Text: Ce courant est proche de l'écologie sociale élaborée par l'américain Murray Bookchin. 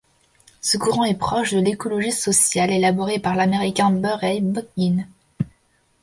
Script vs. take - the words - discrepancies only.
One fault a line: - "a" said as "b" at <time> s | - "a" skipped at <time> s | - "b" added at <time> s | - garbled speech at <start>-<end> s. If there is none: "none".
none